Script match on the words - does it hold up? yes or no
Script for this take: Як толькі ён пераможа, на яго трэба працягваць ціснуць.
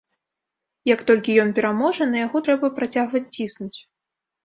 yes